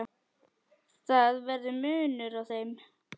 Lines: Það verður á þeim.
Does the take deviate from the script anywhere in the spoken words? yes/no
yes